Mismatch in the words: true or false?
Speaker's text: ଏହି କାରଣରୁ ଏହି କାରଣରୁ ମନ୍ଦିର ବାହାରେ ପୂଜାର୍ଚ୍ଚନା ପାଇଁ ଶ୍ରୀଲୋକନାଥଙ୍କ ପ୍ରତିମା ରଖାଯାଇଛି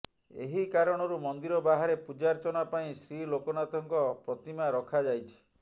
true